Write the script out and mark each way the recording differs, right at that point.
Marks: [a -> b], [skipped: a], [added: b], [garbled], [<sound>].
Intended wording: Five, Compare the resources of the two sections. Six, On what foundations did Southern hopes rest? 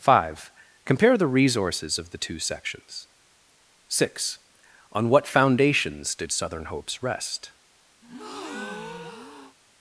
Five, Compare the resources of the two sections. Six, On what foundations did Southern hopes rest? [breath]